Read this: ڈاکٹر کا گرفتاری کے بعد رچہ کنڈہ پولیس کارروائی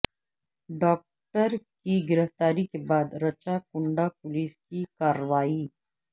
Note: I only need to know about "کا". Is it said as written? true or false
false